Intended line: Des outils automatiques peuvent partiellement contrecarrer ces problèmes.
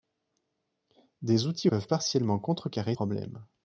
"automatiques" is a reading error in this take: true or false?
true